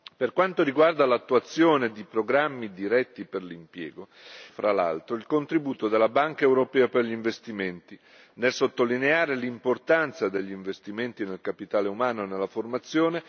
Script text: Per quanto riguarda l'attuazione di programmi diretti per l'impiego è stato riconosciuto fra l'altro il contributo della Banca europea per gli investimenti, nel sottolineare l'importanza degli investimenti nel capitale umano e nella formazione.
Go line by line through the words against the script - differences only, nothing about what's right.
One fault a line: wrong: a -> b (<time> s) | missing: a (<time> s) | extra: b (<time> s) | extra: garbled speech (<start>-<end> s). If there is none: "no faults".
missing: è stato riconosciuto (4.1 s)